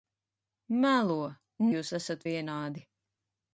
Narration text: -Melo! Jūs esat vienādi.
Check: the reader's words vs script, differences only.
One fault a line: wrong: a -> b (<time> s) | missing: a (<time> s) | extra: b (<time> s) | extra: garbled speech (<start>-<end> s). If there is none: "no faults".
no faults